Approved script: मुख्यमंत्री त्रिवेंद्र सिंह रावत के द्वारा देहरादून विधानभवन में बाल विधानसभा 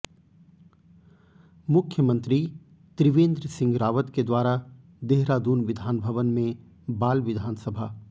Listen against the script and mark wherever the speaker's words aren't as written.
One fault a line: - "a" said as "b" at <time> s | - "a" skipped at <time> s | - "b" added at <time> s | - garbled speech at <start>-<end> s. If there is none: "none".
none